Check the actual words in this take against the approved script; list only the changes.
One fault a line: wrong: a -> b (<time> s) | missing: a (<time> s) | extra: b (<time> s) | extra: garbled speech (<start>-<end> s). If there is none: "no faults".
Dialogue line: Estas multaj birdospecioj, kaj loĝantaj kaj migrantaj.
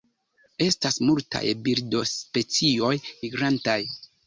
missing: kaj loĝantaj kaj (2.9 s)